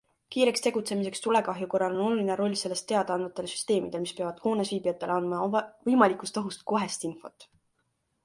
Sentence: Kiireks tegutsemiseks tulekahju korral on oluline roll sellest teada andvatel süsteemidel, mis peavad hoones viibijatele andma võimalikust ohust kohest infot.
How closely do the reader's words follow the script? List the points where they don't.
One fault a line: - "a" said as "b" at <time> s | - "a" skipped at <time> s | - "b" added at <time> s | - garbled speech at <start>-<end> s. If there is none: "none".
none